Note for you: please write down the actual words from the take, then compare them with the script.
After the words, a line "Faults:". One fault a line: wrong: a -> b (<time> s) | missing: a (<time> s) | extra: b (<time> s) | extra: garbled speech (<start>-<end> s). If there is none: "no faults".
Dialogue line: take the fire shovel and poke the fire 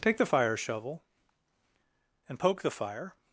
take the fire shovel and poke the fire
Faults:
no faults